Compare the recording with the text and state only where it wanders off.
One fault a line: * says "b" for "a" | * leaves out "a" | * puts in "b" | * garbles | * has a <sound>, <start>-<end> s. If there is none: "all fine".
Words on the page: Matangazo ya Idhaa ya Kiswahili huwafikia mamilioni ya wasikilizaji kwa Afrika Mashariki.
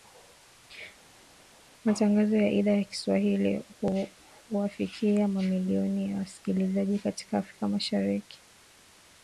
* says "katika" for "kwa"